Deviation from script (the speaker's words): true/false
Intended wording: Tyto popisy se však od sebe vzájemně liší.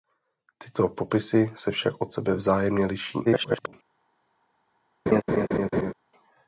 true